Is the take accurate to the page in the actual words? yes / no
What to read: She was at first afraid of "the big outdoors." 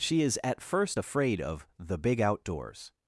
no